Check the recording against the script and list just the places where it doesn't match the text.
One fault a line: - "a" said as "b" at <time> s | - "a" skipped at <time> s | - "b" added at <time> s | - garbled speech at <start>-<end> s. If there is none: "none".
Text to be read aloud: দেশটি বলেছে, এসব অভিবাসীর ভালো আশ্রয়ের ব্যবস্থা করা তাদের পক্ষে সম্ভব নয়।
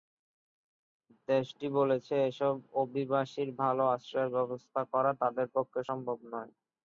none